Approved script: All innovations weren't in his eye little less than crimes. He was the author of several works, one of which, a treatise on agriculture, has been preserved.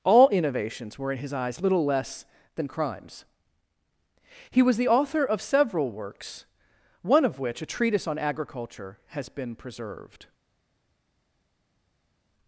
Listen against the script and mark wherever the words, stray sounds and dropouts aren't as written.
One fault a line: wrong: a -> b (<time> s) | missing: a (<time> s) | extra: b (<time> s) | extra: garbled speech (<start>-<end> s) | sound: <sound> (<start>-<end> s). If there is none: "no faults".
wrong: weren't -> were (1.0 s)
wrong: eye -> eyes (1.3 s)